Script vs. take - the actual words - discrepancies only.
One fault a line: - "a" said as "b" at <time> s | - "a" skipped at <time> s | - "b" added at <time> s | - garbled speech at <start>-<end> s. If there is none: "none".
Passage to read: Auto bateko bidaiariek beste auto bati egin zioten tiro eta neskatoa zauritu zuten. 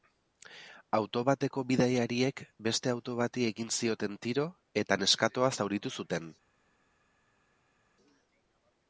none